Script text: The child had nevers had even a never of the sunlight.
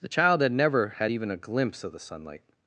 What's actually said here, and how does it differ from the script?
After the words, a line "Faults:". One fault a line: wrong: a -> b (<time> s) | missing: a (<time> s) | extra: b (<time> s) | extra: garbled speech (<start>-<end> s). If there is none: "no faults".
The child had never had even a glimpse of the sunlight.
Faults:
wrong: nevers -> never (0.5 s)
wrong: never -> glimpse (1.4 s)